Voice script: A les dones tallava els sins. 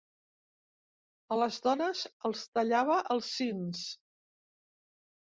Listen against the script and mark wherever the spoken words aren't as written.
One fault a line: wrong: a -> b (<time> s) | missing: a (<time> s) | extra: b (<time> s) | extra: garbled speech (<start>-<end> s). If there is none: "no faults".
extra: els (2.3 s)